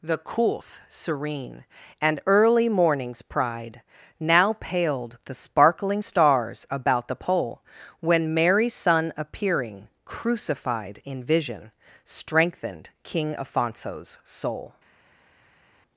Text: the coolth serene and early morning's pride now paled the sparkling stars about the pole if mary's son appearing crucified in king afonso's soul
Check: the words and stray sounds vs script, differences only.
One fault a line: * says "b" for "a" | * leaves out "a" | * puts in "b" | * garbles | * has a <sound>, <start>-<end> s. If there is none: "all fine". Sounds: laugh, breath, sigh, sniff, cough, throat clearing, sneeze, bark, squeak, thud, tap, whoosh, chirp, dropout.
* says "when" for "if"
* puts in "vision strengthened"